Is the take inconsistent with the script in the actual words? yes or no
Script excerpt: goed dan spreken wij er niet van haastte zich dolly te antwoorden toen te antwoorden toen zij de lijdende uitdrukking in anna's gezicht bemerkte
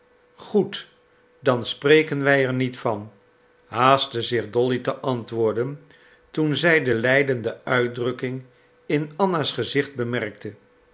yes